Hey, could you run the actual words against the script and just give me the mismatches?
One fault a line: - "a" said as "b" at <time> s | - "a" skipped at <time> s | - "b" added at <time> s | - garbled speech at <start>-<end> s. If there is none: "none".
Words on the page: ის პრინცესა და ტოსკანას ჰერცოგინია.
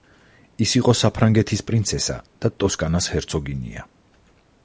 - "იყო საფრანგეთის" added at 0.8 s